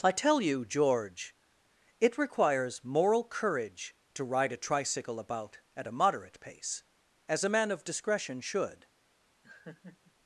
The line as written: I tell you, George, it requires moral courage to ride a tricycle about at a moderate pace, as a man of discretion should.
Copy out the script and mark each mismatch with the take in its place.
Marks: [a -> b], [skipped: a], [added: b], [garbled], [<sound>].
I tell you, George, it requires moral courage to ride a tricycle about at a moderate pace, as a man of discretion should. [laugh]